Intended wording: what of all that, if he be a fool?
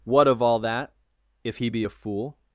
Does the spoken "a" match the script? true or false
true